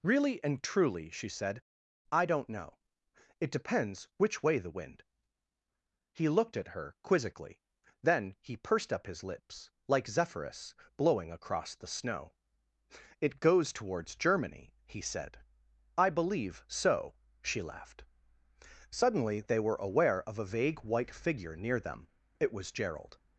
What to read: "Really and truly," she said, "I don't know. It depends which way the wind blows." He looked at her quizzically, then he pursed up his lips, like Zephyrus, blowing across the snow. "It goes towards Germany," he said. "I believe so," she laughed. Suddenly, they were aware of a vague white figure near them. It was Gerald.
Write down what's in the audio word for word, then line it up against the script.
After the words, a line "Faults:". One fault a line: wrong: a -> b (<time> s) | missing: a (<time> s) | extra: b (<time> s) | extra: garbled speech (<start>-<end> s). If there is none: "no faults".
"Really and truly," she said, "I don't know. It depends which way the wind." He looked at her quizzically, then he pursed up his lips, like Zephyrus, blowing across the snow. "It goes towards Germany," he said. "I believe so," she laughed. Suddenly, they were aware of a vague white figure near them. It was Gerald.
Faults:
missing: blows (5.0 s)